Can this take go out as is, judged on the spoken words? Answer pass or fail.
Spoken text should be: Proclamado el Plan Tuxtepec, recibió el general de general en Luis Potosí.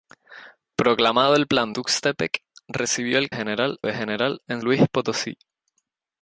pass